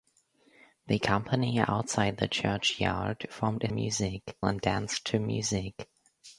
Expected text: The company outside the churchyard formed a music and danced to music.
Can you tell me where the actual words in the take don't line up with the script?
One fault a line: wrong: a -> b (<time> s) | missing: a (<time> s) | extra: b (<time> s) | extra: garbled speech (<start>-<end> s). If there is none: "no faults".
no faults